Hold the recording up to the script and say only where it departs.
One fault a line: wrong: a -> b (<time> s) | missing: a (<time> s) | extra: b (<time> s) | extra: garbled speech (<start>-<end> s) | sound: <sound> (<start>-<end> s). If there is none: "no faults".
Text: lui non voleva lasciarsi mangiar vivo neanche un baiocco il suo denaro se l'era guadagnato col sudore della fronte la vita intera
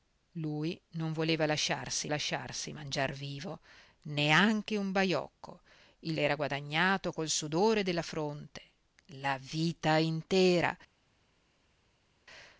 extra: lasciarsi (2.1 s)
missing: suo denaro se (6.2 s)